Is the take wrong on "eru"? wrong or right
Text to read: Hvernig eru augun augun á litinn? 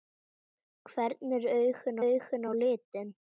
right